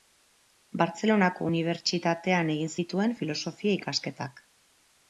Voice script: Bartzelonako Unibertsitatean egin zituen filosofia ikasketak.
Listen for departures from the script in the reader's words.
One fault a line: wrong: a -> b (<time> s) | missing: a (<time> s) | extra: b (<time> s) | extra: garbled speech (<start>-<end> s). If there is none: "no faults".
no faults